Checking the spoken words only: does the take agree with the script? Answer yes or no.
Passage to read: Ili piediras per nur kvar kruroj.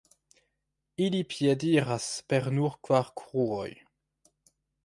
yes